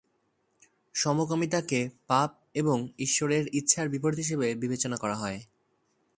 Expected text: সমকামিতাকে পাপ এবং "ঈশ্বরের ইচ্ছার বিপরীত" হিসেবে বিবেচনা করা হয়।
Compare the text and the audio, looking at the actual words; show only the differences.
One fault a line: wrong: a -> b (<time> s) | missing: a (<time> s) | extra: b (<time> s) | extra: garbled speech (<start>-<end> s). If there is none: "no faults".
no faults